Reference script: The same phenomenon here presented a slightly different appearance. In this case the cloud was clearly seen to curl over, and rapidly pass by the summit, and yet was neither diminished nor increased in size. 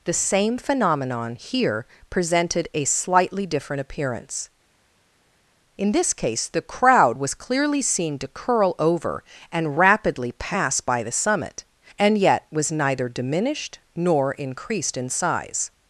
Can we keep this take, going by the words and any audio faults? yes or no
no